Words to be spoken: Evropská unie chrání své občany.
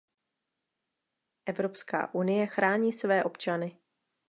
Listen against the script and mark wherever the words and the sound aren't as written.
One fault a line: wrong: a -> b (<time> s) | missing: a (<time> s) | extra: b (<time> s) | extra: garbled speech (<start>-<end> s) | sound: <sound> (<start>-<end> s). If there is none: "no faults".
no faults